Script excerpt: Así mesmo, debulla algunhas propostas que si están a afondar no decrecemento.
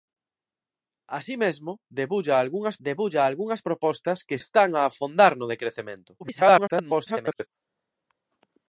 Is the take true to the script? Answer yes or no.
no